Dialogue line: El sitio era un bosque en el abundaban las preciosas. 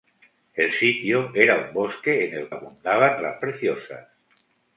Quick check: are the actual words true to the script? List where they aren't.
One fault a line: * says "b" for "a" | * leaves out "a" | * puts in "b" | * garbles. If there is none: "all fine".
all fine